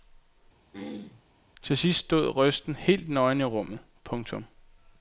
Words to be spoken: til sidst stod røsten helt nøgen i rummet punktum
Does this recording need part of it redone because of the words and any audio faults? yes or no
yes